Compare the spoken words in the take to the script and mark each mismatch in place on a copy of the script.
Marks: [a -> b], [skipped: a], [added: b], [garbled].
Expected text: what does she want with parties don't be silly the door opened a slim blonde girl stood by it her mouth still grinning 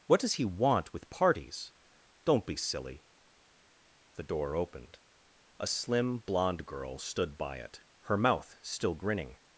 what does [she -> he] want with parties don't be silly the door opened a slim blonde girl stood by it her mouth still grinning